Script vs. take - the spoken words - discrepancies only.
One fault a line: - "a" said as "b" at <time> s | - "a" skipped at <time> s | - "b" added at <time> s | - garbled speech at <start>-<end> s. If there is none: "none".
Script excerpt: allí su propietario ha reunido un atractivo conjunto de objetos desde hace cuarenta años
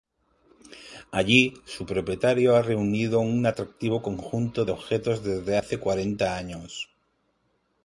none